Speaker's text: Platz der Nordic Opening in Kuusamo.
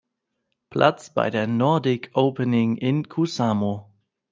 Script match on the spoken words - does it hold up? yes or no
no